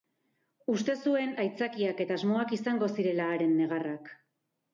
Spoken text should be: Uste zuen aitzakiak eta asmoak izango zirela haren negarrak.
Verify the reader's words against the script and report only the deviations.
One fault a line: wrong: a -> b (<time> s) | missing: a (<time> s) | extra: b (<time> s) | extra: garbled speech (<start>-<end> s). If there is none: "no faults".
no faults